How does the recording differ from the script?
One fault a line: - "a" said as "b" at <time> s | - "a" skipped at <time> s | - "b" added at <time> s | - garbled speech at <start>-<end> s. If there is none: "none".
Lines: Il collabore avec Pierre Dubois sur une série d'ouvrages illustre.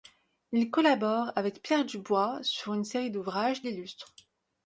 none